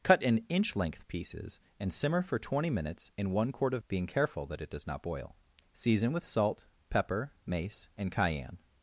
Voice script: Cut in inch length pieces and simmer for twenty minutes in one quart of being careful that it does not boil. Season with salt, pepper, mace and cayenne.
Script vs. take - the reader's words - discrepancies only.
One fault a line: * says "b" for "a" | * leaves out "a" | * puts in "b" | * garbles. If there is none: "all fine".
all fine